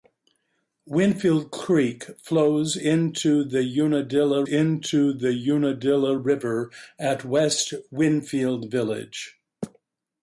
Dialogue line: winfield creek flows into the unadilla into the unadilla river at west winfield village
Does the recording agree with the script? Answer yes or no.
yes